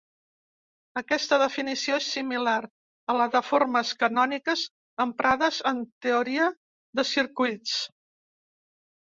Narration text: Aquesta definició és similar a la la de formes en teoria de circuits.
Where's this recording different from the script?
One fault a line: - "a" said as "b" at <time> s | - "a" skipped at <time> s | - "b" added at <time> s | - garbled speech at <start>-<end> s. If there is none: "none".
- "la" skipped at 3.3 s
- "canòniques emprades" added at 4.0 s